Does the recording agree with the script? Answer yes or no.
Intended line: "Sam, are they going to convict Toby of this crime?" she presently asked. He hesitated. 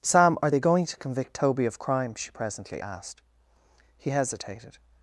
no